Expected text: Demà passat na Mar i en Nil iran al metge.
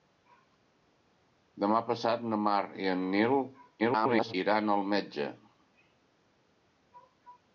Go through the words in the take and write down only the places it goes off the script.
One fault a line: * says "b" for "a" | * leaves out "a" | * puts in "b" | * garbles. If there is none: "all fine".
* garbles